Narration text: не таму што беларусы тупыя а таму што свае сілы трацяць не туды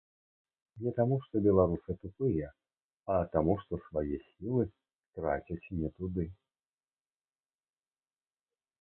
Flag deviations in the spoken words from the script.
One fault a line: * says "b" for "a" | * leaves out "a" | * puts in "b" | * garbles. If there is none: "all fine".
all fine